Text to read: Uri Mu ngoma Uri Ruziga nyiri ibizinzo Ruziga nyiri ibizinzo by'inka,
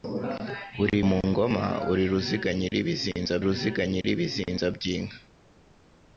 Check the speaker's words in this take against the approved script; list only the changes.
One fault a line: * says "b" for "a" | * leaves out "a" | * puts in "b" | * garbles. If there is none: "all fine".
all fine